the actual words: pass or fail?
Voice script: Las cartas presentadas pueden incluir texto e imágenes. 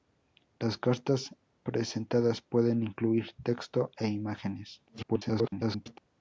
fail